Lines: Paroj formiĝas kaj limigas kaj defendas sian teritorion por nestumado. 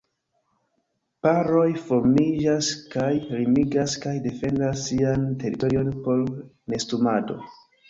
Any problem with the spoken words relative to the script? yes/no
no